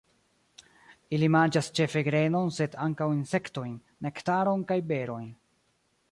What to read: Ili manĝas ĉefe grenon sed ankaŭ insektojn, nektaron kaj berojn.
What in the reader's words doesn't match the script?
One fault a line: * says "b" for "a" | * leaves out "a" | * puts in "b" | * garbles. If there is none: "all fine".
all fine